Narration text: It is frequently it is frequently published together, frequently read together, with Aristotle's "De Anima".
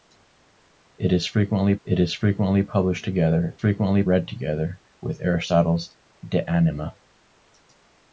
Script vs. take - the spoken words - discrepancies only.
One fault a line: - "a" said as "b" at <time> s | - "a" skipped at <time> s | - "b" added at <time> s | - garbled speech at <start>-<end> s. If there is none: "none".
none